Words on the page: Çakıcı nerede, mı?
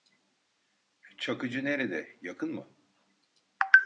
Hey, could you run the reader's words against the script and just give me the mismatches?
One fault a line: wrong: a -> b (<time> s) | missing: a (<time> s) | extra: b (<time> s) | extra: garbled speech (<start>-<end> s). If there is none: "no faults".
extra: yakın (2.2 s)